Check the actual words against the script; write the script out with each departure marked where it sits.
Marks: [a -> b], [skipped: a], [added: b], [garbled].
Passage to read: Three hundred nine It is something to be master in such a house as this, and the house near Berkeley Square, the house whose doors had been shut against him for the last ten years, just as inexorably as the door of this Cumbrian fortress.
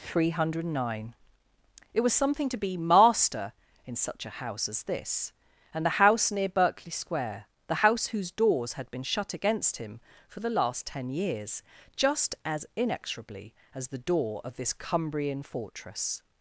Three hundred nine It [is -> was] something to be master in such a house as this, and the house near Berkeley Square, the house whose doors had been shut against him for the last ten years, just as inexorably as the door of this Cumbrian fortress.